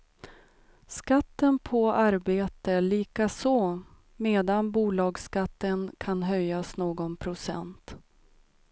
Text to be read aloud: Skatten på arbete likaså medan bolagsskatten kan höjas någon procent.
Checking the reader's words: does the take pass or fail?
pass